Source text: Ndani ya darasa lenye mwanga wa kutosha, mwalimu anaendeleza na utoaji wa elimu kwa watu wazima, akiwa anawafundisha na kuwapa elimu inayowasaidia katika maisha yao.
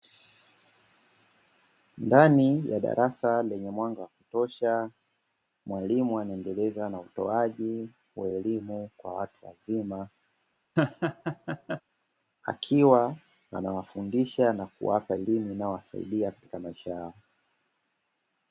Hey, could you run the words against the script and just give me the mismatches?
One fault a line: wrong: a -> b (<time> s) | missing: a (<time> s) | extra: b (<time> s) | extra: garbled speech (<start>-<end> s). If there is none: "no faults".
no faults